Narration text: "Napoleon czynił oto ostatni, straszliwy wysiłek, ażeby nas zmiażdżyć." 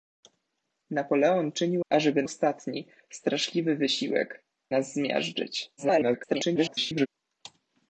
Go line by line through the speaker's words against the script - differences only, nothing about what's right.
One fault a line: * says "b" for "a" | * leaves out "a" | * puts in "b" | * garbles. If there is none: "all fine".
* says "ażeby" for "oto"
* leaves out "ażeby"
* garbles